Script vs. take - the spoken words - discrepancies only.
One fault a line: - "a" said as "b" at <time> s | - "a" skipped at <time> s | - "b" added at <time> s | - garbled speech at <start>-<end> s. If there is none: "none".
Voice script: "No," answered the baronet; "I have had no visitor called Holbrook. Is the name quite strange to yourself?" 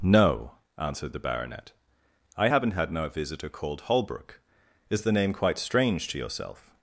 - "have" said as "haven't" at 2.5 s